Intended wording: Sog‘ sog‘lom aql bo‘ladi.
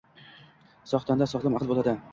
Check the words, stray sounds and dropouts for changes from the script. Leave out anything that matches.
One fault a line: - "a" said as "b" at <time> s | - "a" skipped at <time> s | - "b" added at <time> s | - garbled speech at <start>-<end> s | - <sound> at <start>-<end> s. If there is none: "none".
- "tanda" added at 1.1 s